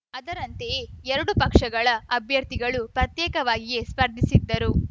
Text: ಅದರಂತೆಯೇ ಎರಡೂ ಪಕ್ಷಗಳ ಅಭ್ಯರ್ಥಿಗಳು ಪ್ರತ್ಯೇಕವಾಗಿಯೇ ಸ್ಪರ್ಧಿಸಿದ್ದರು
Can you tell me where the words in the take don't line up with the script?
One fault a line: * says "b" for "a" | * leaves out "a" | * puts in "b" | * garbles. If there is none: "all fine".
all fine